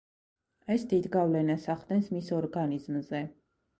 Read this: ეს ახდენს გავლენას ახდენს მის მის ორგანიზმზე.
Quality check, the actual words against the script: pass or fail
fail